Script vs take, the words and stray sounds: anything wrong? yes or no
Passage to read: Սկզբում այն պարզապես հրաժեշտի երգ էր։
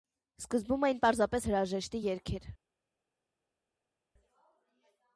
no